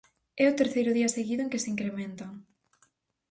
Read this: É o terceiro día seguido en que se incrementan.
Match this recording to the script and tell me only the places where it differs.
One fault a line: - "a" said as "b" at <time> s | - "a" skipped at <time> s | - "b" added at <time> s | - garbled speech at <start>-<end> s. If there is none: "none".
none